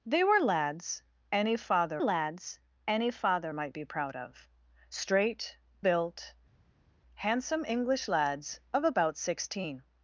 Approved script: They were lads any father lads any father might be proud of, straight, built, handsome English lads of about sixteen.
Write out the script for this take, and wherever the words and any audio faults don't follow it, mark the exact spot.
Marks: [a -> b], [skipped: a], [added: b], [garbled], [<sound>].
They were lads any father lads any father might be proud of, straight, built, handsome English lads of about sixteen.